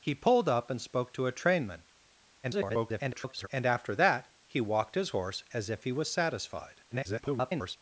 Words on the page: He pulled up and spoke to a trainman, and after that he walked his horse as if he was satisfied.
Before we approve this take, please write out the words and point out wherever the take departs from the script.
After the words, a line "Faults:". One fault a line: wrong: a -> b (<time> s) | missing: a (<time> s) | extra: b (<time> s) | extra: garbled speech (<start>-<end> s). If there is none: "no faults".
He pulled up and spoke to a trainman, [garbled] and after that he walked his horse as if he was satisfied. [garbled]
Faults:
extra: garbled speech (2.4-3.5 s)
extra: garbled speech (6.9-7.8 s)